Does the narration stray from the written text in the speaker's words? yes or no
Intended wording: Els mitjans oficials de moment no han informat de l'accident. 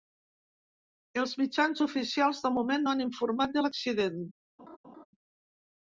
no